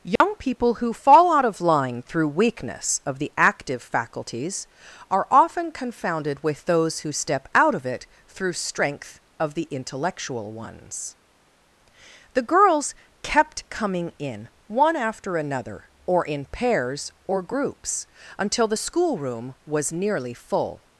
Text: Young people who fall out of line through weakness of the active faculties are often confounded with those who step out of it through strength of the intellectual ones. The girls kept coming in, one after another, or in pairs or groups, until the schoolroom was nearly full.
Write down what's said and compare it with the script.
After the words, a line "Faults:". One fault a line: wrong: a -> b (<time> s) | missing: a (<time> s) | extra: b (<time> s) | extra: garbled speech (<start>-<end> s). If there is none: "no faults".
Young people who fall out of line through weakness of the active faculties are often confounded with those who step out of it through strength of the intellectual ones. The girls kept coming in, one after another, or in pairs or groups, until the schoolroom was nearly full.
Faults:
no faults